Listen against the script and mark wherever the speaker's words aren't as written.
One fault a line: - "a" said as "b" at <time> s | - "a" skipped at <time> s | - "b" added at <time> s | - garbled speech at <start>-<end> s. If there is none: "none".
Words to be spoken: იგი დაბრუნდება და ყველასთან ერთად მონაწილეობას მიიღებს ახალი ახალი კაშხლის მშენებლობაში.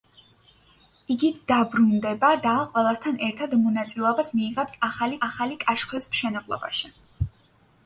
none